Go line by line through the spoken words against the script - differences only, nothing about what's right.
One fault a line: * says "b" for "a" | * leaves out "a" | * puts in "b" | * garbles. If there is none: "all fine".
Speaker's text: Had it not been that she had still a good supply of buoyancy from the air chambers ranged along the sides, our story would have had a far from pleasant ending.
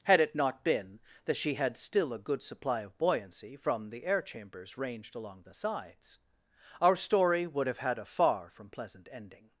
all fine